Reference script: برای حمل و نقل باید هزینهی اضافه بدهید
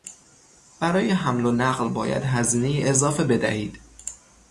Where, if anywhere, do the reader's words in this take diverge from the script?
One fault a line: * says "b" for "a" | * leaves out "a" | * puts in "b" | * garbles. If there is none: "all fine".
all fine